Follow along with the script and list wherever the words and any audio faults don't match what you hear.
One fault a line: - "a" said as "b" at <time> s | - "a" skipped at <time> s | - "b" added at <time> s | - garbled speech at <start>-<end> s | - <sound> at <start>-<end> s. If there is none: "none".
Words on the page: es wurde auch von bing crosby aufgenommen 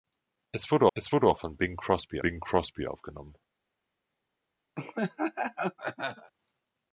- "es wurde" added at 0.9 s
- "bing crosby" added at 2.2 s
- laugh at 4.8-6.3 s